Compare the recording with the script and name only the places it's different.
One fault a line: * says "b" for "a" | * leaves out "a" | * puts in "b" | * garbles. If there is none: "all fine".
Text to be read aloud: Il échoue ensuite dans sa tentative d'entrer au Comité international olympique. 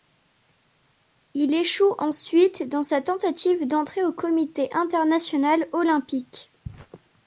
all fine